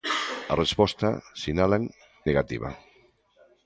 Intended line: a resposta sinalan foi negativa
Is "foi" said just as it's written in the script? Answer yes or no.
no